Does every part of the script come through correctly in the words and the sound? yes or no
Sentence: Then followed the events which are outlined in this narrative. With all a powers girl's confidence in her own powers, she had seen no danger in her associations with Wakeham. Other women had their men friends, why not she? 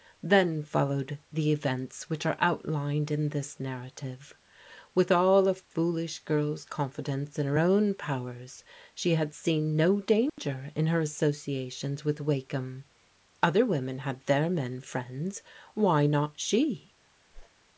no